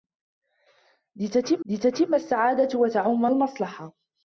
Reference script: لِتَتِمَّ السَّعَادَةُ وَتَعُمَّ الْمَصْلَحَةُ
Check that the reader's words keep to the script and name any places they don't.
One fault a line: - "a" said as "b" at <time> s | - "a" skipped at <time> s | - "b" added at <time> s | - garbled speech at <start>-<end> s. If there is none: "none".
- "لِتَتِمَّ" added at 1.6 s